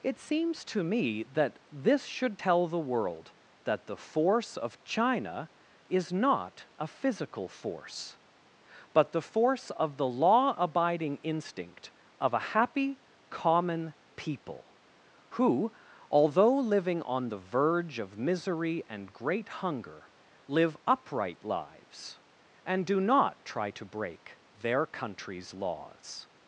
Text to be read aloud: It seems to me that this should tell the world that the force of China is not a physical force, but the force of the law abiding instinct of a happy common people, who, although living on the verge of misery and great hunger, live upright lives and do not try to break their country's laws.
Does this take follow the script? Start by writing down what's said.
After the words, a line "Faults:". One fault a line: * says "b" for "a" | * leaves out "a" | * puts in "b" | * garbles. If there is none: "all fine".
It seems to me that this should tell the world that the force of China is not a physical force, but the force of the law abiding instinct of a happy common people, who, although living on the verge of misery and great hunger, live upright lives and do not try to break their country's laws.
Faults:
all fine